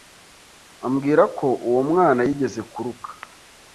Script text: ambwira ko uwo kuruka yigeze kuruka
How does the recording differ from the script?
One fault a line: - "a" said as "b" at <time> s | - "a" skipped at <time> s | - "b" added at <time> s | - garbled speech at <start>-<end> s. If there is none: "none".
- "kuruka" said as "mwana" at 1.9 s